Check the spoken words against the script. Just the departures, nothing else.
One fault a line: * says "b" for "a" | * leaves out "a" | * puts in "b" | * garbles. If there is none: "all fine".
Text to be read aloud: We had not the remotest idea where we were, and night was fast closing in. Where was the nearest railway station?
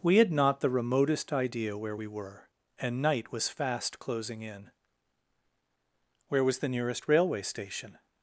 all fine